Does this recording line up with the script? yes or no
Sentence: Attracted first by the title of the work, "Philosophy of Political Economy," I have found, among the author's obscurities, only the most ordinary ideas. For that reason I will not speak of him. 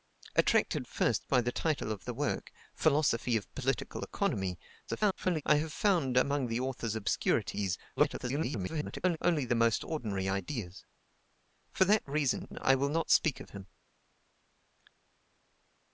no